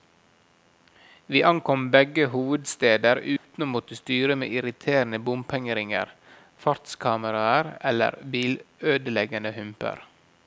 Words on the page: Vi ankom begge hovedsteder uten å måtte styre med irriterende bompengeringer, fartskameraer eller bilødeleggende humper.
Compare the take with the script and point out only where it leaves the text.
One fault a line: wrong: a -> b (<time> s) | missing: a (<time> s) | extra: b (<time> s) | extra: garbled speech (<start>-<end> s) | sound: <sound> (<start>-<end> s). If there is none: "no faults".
sound: dropout (3.4-3.5 s)